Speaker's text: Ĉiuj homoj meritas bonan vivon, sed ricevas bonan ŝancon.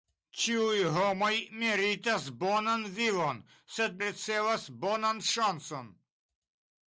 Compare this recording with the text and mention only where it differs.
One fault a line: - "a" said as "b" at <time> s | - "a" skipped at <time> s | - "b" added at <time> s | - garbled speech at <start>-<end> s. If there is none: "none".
none